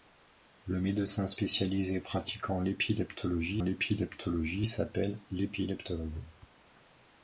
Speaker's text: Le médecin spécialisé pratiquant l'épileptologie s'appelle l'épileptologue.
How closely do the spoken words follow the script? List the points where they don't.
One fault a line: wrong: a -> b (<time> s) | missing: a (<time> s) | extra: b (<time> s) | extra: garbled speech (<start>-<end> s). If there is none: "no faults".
extra: l'épileptologie (3.6 s)